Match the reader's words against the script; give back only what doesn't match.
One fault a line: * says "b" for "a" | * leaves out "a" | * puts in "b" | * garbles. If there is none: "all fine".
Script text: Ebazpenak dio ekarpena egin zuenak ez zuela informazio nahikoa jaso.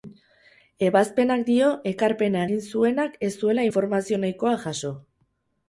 all fine